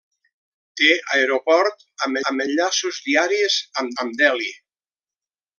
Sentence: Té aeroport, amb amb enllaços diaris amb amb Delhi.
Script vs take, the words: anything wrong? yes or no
no